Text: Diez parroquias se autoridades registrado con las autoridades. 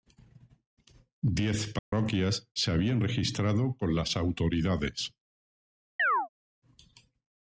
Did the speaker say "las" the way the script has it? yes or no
yes